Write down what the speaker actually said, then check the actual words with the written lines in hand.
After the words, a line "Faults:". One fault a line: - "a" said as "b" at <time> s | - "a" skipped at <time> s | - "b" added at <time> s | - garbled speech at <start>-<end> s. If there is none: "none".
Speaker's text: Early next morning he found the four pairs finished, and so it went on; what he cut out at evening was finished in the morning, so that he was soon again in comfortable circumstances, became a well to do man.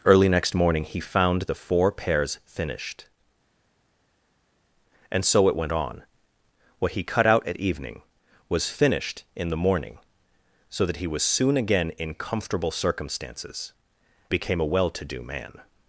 Early next morning he found the four pairs finished, and so it went on; what he cut out at evening was finished in the morning, so that he was soon again in comfortable circumstances, became a well to do man.
Faults:
none